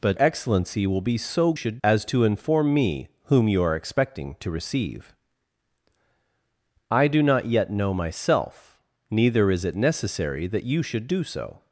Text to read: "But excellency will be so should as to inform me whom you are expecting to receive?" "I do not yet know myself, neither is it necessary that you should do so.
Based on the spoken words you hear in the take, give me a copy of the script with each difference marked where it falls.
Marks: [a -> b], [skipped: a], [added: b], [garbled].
"But excellency will be so should as to inform me whom you are expecting to receive?" "I do not yet know myself, neither is it necessary that you should do so.